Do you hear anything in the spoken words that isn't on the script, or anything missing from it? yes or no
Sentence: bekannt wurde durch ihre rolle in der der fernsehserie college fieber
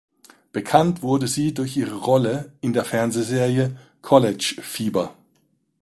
yes